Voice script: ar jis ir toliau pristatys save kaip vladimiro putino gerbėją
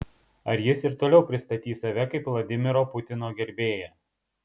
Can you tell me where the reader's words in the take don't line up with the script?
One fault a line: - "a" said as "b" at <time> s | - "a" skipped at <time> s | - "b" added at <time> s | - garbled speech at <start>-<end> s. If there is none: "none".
none